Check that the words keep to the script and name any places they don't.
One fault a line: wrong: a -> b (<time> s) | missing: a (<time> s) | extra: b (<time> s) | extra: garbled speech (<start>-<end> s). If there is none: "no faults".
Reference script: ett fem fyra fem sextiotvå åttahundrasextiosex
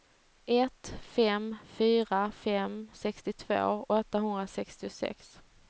no faults